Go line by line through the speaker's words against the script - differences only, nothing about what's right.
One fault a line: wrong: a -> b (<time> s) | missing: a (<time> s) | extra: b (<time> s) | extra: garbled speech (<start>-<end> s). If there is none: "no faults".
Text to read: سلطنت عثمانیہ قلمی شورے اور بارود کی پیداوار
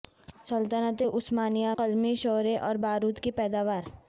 no faults